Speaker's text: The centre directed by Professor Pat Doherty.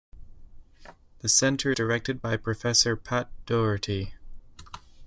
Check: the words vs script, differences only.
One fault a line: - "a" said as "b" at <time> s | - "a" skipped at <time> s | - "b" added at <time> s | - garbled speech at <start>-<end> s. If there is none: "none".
none